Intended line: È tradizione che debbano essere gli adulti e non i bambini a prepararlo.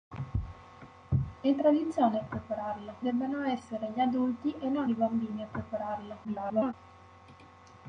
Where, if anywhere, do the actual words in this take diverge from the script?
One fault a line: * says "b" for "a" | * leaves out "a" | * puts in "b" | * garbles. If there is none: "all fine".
* says "prepararlo" for "che"
* garbles